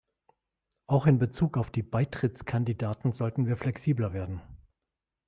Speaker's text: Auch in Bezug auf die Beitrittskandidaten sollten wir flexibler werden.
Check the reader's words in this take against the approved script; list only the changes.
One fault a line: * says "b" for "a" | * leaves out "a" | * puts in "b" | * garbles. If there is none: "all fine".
all fine